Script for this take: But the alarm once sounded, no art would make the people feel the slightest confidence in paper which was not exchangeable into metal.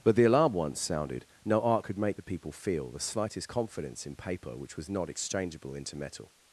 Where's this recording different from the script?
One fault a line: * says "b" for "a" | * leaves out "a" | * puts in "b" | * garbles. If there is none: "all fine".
* says "could" for "would"